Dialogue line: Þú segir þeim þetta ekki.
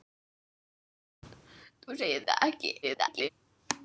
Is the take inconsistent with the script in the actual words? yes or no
yes